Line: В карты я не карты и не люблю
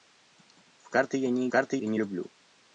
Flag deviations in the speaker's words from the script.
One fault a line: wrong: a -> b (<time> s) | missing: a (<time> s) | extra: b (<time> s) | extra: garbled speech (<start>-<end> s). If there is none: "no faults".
no faults